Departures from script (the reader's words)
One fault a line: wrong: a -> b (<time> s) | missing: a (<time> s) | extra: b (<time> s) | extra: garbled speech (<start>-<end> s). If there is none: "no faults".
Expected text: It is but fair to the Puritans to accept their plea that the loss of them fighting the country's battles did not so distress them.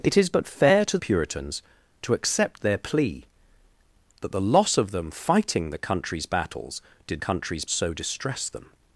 missing: the (1.0 s)
wrong: not -> country's (7.2 s)